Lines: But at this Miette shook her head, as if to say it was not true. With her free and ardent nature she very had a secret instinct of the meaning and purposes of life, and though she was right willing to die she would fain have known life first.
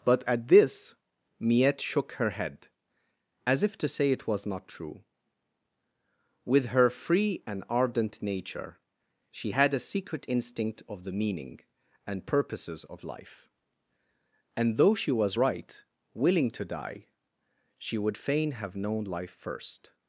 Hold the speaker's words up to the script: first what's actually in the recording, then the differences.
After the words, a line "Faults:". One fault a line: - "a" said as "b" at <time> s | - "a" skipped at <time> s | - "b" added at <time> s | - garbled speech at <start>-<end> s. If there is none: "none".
But at this Miette shook her head, as if to say it was not true. With her free and ardent nature she had a secret instinct of the meaning and purposes of life, and though she was right willing to die she would fain have known life first.
Faults:
- "very" skipped at 9.5 s